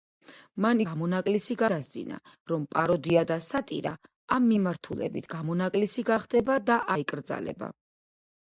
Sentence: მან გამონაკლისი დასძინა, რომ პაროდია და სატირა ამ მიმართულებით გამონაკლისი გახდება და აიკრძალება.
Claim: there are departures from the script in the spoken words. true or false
false